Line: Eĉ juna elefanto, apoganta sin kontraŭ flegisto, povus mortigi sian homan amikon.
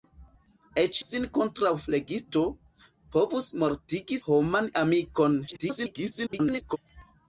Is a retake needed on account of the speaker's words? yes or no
yes